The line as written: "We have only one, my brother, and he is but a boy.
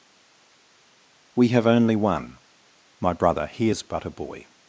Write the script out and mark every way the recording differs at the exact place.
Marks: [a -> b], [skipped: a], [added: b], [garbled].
"We have only one, my brother, [skipped: and] he is but a boy.